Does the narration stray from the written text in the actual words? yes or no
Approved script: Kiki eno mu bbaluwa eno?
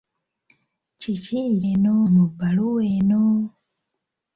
no